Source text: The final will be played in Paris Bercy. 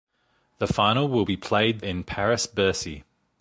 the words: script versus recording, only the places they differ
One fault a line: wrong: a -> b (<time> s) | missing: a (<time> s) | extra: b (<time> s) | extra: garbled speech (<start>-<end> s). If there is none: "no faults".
no faults